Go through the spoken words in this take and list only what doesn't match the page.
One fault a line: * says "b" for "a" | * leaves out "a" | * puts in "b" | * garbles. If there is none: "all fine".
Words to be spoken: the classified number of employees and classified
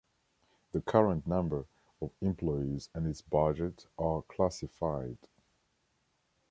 * says "current" for "classified"
* puts in "its budget are"